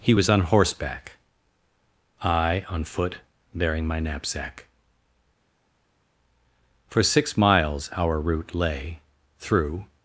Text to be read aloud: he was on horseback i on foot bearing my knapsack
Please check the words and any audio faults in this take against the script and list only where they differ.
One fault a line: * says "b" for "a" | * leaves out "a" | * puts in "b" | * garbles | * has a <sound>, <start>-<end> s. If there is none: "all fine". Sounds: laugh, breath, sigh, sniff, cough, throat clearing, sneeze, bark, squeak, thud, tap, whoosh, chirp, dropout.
* puts in "for six miles our route lay through"